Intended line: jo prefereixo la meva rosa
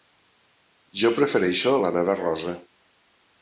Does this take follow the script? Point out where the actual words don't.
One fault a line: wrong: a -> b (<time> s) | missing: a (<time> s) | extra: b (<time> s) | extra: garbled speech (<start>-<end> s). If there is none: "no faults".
no faults